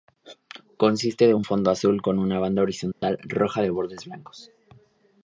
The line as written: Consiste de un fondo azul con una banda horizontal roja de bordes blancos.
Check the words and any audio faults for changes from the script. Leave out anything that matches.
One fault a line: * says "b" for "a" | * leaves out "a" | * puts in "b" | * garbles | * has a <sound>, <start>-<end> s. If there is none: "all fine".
* has a dropout, 2.9-3.0 s